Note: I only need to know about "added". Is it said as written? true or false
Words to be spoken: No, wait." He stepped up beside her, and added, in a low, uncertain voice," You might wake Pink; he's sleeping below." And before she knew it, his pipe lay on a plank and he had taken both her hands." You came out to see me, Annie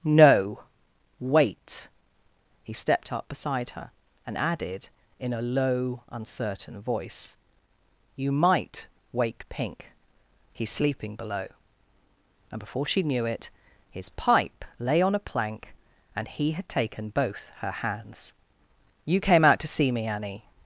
true